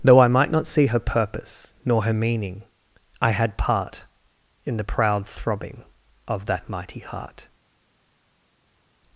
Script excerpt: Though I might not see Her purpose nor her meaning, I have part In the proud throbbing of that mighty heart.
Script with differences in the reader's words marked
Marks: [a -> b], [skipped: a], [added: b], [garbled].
Though I might not see Her purpose nor her meaning, I [have -> had] part In the proud throbbing of that mighty heart.